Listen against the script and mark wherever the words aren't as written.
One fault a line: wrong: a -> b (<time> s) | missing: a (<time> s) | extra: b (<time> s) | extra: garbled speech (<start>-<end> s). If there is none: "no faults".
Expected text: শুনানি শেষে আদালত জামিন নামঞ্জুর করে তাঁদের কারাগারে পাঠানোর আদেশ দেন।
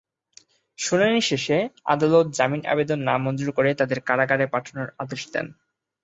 extra: আবেদন (2.6 s)